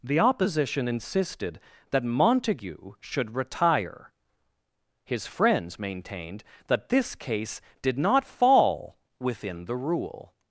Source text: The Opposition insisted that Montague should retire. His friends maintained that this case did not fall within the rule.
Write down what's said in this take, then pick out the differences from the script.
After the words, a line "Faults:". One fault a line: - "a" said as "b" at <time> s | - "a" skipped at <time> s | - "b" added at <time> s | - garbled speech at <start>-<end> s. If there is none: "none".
The Opposition insisted that Montague should retire. His friends maintained that this case did not fall within the rule.
Faults:
none